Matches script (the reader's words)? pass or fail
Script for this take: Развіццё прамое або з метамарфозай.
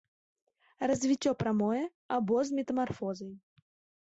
pass